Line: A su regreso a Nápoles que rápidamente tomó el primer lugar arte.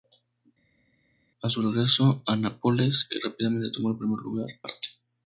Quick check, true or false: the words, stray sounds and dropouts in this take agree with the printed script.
true